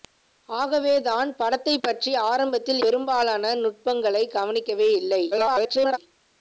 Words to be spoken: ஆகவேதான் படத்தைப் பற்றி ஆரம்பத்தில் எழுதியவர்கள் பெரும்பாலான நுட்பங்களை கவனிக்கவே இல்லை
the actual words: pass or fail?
fail